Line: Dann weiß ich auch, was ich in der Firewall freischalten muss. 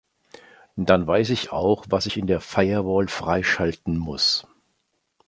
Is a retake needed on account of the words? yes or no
no